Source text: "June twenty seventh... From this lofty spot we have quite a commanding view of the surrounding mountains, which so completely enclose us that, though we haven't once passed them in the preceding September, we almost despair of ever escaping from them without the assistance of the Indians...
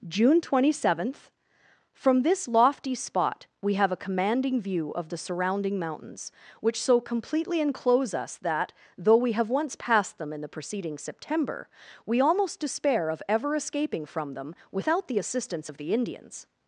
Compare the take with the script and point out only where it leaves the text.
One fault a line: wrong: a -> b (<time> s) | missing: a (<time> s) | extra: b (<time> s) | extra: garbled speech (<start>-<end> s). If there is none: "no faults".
missing: quite (3.9 s)
wrong: haven't -> have (9.3 s)